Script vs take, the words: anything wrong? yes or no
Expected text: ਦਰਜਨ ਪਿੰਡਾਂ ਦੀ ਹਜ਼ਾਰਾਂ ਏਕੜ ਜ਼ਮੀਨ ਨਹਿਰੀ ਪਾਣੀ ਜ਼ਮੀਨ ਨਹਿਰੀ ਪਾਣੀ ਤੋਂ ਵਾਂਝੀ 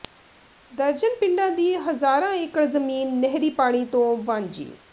yes